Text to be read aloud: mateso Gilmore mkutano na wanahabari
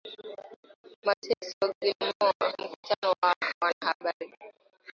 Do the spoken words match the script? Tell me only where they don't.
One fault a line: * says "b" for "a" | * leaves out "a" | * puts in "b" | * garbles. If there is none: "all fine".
all fine